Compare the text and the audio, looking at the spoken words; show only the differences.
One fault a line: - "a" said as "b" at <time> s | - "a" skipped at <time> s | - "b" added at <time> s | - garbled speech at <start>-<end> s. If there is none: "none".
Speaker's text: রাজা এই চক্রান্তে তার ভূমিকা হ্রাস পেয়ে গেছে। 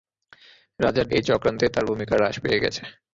none